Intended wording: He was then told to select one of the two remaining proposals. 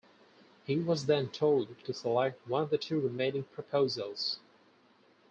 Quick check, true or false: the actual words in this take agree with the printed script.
true